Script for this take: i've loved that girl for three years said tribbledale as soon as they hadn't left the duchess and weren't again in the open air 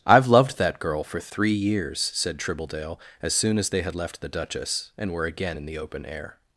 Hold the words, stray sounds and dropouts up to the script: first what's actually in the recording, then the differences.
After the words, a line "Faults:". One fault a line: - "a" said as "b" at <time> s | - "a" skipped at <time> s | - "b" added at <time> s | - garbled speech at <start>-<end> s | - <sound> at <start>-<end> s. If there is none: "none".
i've loved that girl for three years said tribbledale as soon as they had left the duchess and were again in the open air
Faults:
- "hadn't" said as "had" at 3.8 s
- "weren't" said as "were" at 5.1 s